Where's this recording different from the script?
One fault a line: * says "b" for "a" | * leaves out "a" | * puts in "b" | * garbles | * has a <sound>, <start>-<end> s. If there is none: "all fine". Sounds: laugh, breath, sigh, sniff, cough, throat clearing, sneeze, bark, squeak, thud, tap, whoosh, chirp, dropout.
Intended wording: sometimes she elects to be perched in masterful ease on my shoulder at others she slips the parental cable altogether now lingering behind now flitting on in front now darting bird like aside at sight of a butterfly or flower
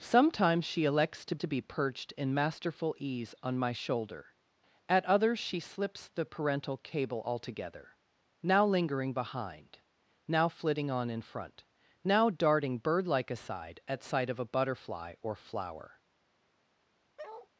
* puts in "to"
* has a bark, 17.2-17.5 s